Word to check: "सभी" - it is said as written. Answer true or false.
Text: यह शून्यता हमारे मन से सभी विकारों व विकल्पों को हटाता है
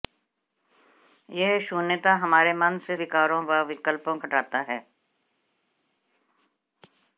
false